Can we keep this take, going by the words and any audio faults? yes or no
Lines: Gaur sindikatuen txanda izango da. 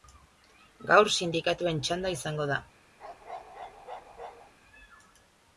no